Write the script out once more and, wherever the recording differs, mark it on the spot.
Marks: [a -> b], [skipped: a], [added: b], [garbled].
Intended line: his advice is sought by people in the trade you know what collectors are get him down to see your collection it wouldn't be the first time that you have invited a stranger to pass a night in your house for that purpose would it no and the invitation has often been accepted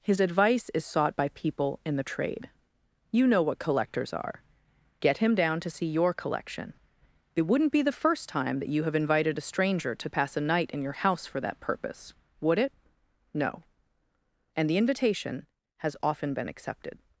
his advice is sought by people in the trade you know what collectors are get him down to see your collection it wouldn't be the first time that you have invited a stranger to pass a night in your house for that purpose would it no and the invitation has often been accepted